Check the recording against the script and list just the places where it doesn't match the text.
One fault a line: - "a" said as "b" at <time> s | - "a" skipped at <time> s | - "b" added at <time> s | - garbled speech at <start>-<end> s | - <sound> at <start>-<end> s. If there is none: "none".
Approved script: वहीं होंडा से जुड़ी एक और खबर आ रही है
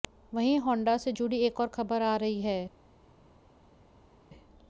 none